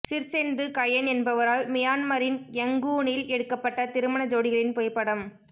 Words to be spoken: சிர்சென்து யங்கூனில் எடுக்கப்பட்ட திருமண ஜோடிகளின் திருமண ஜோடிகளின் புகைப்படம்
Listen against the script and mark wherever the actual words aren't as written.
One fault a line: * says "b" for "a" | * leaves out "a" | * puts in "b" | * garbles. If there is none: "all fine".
* puts in "கயென் என்பவரால் மியான்மரின்"
* leaves out "திருமண ஜோடிகளின்"